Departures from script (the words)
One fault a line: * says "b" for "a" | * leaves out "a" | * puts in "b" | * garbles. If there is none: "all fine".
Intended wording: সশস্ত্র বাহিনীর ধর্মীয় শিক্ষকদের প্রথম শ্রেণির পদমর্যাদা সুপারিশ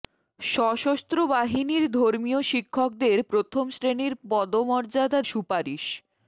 all fine